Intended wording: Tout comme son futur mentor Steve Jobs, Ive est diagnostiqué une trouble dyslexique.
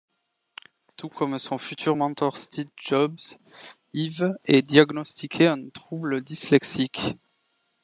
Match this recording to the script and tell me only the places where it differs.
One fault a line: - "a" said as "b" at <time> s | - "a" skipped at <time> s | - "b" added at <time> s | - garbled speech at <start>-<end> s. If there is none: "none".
- "une" said as "un" at 5.5 s